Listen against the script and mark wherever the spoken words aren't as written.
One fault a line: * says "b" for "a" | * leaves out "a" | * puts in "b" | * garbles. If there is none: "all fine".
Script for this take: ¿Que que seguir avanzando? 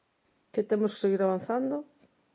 * puts in "temos"